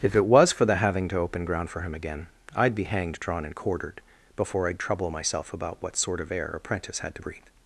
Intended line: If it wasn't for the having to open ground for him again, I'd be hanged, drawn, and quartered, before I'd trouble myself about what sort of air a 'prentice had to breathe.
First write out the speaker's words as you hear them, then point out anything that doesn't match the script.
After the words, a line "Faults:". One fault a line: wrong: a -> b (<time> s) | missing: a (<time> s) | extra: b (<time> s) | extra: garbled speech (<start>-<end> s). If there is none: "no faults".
If it was for the having to open ground for him again, I'd be hanged, drawn, and quartered, before I'd trouble myself about what sort of air a 'prentice had to breathe.
Faults:
wrong: wasn't -> was (0.2 s)